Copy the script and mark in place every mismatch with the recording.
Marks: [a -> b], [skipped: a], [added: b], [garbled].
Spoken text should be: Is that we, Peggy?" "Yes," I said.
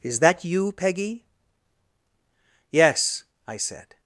Is that [we, -> you] Peggy?" "Yes," I said.